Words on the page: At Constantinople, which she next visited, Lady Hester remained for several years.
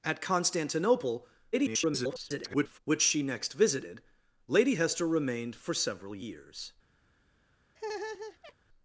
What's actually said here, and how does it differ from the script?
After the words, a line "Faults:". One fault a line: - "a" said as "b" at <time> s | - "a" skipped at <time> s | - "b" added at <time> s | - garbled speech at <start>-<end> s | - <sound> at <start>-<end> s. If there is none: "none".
At Constantinople, [garbled] which she next visited, Lady Hester remained for several years.
Faults:
- garbled speech at 1.5-2.8 s
- laugh at 7.8-8.5 s